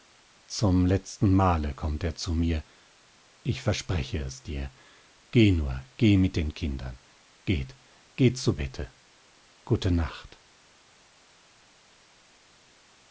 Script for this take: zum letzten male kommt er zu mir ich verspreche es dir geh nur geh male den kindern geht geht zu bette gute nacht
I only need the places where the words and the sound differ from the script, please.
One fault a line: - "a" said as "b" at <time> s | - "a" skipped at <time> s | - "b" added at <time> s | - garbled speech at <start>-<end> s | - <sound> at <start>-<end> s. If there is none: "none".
- "male" said as "mit" at 6.2 s